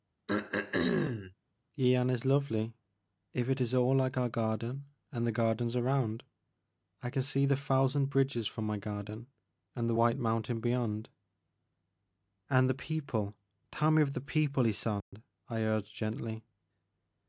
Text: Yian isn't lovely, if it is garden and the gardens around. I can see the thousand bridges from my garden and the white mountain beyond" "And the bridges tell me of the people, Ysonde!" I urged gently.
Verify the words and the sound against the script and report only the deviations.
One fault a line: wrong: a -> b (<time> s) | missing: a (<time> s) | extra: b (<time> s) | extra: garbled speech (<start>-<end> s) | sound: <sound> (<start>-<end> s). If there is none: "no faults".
sound: throat clearing (0.3-1.3 s)
wrong: isn't -> is (2.1 s)
extra: all like our (3.7 s)
wrong: bridges -> people (12.7 s)
sound: dropout (15.0-15.1 s)